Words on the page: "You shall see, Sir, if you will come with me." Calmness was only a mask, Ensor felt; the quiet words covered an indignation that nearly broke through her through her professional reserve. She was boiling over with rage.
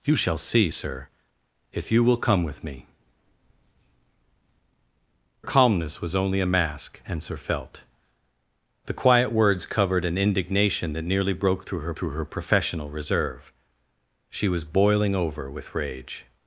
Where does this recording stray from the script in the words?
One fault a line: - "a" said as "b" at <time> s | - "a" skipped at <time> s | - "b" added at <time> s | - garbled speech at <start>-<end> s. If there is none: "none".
none